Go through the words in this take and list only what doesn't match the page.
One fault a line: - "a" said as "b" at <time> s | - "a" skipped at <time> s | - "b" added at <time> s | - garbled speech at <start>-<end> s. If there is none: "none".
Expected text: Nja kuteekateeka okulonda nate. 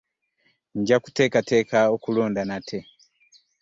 none